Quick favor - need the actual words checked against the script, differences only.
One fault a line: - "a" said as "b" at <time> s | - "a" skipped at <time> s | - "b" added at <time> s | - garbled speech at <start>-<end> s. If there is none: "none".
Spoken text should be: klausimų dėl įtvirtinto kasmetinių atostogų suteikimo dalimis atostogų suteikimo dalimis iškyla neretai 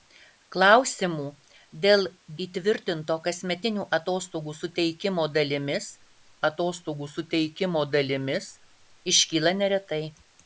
none